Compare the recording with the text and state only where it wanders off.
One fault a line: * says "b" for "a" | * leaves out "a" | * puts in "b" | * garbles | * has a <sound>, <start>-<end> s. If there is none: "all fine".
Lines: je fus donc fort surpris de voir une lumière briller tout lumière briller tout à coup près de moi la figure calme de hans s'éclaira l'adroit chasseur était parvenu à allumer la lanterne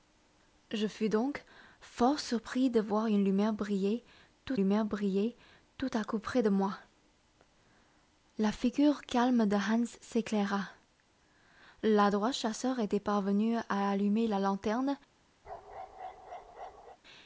* has a bark, 15.4-17.0 s